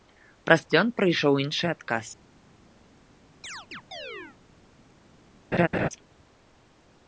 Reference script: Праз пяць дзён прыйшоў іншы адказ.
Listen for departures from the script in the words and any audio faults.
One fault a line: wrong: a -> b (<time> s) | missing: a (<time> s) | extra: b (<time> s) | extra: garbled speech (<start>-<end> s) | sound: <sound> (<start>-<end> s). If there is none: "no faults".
missing: пяць (0.6 s)
sound: chirp (3.4-4.4 s)
sound: laugh (5.5-5.9 s)